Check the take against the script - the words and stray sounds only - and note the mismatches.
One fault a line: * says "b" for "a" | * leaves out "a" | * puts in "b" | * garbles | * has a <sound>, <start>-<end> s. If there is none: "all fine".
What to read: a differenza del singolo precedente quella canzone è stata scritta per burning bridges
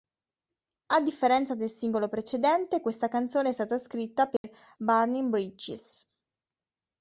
* says "questa" for "quella"
* has a dropout, 4.4-4.4 s